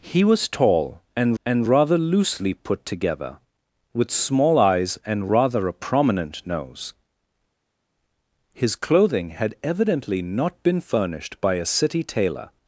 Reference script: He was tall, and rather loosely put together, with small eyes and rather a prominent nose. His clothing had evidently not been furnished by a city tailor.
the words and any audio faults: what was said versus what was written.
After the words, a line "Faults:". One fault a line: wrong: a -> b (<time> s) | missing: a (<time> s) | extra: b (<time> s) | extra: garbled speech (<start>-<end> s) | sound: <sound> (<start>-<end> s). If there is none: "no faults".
He was tall, and and rather loosely put together, with small eyes and rather a prominent nose. His clothing had evidently not been furnished by a city tailor.
Faults:
extra: and (1.4 s)